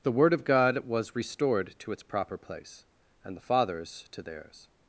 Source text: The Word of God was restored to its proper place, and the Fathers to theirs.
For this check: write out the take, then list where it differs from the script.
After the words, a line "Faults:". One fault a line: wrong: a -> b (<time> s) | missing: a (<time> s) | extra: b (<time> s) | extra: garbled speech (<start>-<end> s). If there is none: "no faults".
The Word of God was restored to its proper place, and the Fathers to theirs.
Faults:
no faults